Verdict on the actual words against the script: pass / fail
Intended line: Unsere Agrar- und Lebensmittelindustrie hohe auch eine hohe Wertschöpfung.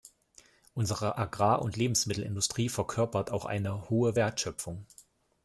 fail